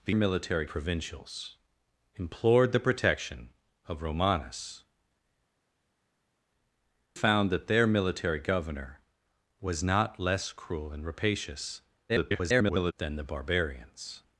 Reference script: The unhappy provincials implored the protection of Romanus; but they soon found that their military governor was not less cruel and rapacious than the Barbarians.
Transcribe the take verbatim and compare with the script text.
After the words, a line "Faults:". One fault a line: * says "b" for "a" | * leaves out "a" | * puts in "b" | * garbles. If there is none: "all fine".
The military provincials implored the protection of Romanus; found that their military governor was not less cruel and rapacious [garbled] than the Barbarians.
Faults:
* says "military" for "unhappy"
* leaves out "but they soon"
* garbles